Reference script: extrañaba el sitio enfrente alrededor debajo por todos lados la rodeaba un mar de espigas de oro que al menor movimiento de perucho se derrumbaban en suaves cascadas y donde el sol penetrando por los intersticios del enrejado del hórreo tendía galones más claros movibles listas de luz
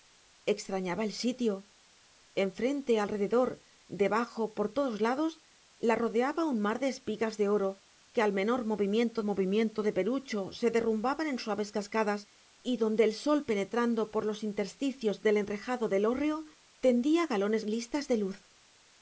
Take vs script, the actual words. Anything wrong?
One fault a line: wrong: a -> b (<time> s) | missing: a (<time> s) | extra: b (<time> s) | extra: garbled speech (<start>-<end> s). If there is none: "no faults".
extra: movimiento (9.2 s)
missing: más claros movibles (17.7 s)